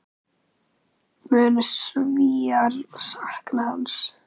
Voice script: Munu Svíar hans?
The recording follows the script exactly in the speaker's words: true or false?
false